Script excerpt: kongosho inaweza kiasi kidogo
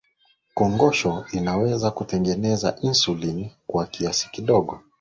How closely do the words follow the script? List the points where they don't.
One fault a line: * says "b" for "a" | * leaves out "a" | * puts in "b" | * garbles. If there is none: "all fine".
* puts in "kutengeneza insulini kwa"